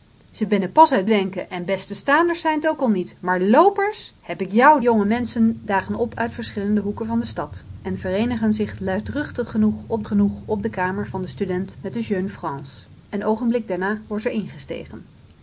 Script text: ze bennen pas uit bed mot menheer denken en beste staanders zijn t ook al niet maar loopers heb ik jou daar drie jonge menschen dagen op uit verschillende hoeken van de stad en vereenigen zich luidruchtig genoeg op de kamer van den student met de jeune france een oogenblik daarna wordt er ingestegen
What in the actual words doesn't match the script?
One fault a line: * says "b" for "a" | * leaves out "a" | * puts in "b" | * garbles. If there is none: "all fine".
* leaves out "bed mot menheer"
* leaves out "daar drie"
* puts in "genoeg op"